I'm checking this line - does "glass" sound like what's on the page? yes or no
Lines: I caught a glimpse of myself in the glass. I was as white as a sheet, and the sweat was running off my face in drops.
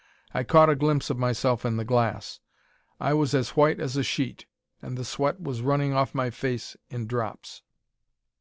yes